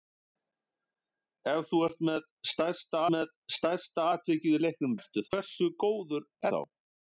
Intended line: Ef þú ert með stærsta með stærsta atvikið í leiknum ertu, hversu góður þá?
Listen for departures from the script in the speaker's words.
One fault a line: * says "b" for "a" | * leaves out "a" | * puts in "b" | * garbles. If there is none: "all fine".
all fine